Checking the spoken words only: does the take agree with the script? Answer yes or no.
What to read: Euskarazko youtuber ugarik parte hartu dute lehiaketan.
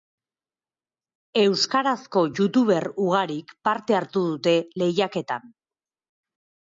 yes